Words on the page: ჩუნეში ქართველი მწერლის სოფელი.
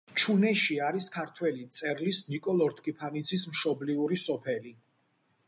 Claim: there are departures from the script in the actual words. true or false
true